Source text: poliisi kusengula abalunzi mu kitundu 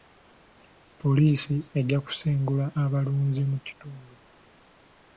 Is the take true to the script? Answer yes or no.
no